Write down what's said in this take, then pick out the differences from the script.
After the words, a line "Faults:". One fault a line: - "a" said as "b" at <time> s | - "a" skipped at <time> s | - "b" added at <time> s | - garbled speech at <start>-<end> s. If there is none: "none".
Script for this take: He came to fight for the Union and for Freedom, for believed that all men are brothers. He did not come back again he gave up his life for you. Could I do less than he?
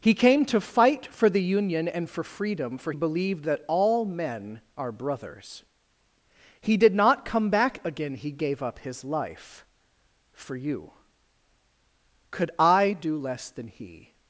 He came to fight for the Union and for Freedom, for believed that all men are brothers. He did not come back again he gave up his life for you. Could I do less than he?
Faults:
none